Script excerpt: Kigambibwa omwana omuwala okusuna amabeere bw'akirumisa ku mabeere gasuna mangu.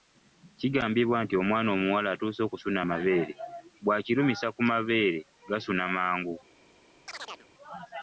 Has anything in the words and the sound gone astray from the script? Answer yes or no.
yes